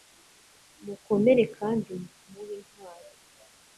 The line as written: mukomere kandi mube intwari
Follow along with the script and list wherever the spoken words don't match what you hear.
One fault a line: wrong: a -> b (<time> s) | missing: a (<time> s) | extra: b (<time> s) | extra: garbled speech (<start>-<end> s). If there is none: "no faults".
no faults